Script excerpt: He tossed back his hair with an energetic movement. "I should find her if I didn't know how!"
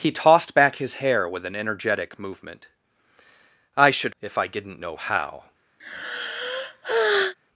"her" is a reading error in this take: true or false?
true